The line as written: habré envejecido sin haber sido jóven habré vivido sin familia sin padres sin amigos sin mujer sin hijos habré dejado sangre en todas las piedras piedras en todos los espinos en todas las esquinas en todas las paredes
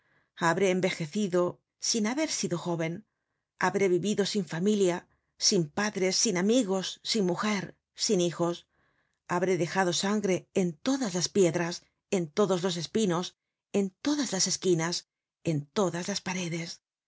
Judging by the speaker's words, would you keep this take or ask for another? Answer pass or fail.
fail